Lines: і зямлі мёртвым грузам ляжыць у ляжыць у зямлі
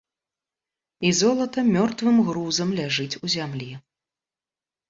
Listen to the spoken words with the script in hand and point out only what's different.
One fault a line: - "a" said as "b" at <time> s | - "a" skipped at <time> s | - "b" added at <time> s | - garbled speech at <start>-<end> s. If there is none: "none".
- "зямлі" said as "золата" at 1.2 s
- "ляжыць у" skipped at 3.3 s